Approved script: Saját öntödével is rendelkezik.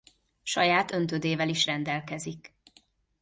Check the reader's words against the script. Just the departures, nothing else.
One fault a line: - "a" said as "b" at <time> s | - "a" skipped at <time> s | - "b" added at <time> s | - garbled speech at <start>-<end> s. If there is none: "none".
none